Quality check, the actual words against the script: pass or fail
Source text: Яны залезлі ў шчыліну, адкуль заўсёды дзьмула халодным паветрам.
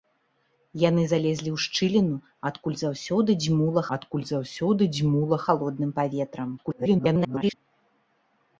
fail